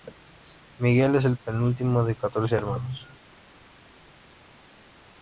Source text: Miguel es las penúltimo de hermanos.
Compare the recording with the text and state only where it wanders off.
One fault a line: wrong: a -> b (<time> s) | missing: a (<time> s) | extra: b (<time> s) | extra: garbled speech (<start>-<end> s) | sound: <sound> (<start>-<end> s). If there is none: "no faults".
wrong: las -> el (1.2 s)
extra: catorce (2.1 s)